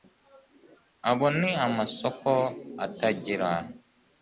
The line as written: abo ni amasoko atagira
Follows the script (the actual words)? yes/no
yes